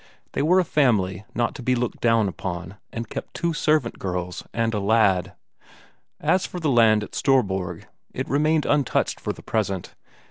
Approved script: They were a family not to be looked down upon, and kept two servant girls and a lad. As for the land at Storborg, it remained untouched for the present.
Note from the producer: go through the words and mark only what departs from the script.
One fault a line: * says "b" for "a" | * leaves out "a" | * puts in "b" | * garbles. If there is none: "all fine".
all fine